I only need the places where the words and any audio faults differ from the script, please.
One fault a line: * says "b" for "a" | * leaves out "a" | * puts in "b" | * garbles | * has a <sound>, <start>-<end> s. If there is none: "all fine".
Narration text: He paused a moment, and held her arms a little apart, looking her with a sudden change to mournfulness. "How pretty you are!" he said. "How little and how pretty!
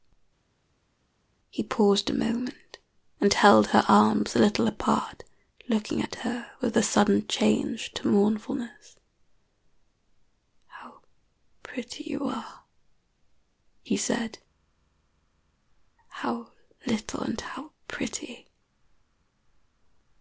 * puts in "at"